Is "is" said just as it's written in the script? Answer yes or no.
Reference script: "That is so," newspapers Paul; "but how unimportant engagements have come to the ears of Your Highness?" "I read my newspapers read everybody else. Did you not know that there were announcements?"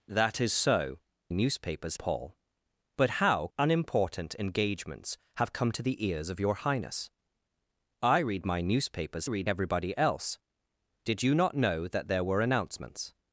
yes